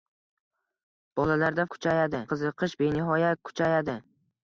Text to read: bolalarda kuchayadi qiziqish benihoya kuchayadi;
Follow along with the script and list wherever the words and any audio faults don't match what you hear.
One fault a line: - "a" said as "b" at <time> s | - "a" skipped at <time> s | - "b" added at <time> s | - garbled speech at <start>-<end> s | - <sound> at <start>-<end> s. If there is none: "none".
none